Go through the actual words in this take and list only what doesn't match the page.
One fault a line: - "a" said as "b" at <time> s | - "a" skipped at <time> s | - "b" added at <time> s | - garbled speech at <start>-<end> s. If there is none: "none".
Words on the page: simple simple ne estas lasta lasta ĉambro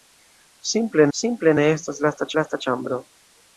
none